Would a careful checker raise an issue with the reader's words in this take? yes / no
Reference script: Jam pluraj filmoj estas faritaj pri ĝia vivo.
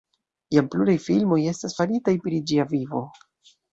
no